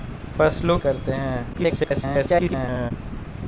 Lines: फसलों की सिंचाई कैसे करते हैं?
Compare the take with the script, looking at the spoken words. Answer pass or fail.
fail